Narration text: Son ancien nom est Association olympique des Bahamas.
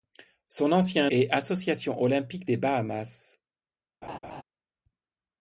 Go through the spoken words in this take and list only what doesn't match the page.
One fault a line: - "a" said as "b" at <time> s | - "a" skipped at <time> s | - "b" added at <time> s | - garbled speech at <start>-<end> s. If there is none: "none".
- "nom" skipped at 1.1 s